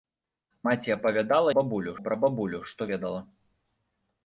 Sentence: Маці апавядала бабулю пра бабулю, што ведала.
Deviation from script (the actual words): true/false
false